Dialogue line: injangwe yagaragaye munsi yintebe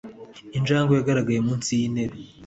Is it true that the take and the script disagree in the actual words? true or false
false